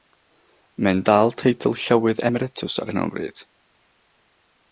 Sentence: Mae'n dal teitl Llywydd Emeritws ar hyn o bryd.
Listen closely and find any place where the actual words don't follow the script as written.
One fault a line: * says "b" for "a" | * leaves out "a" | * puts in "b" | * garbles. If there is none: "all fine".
all fine